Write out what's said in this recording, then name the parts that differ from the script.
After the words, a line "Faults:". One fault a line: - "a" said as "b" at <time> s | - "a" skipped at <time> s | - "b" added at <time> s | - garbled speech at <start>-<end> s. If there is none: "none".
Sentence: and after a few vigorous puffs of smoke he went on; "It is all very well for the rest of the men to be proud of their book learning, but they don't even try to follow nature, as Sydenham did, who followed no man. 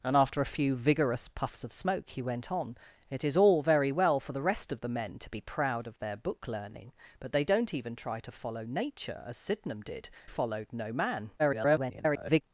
and after a few vigorous puffs of smoke he went on; "It is all very well for the rest of the men to be proud of their book learning, but they don't even try to follow nature, as Sydenham did, followed no man. [garbled]
Faults:
- "who" skipped at 10.1 s
- garbled speech at 11.4-12.4 s